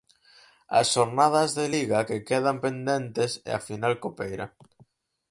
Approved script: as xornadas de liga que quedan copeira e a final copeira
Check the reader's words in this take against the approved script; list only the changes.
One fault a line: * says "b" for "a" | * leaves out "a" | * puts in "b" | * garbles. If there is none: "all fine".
* says "pendentes" for "copeira"